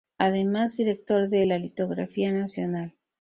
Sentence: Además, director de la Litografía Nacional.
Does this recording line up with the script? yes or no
yes